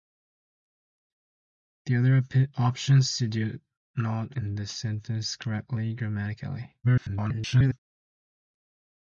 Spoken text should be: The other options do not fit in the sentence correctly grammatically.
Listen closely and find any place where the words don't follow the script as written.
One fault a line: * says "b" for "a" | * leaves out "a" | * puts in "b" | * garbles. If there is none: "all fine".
* leaves out "fit"
* garbles